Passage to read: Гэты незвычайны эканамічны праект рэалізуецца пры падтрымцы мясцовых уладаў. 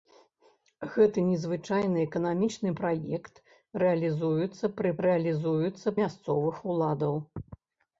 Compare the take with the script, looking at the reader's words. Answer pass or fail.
fail